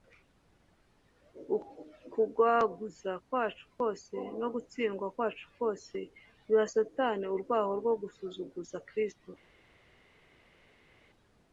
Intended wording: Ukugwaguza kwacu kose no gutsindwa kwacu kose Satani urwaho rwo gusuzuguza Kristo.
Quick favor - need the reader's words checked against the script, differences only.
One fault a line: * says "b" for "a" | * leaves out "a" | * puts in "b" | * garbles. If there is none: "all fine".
* puts in "biha"